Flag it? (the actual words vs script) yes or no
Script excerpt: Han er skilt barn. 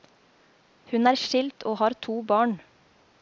yes